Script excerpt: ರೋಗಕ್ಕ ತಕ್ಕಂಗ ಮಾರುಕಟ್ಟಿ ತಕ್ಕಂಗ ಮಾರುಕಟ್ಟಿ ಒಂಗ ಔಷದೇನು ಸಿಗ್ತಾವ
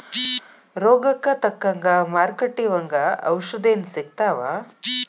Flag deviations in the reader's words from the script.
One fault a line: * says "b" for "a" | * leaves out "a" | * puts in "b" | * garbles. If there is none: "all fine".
* leaves out "ತಕ್ಕಂಗ ಮಾರುಕಟ್ಟಿ"